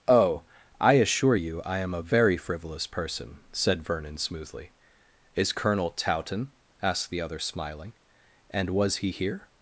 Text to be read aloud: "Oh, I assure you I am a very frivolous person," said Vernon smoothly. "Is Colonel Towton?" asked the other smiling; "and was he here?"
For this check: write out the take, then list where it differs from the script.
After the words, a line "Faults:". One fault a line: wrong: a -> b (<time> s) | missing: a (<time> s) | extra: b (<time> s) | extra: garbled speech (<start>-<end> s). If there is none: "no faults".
"Oh, I assure you I am a very frivolous person," said Vernon smoothly. "Is Colonel Towton?" asked the other smiling; "and was he here?"
Faults:
no faults